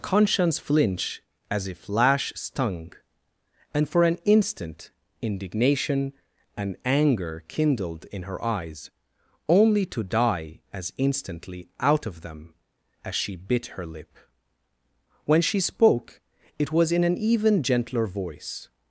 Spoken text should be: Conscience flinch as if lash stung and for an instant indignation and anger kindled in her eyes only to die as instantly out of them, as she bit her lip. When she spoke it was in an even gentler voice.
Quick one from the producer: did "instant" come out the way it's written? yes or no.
yes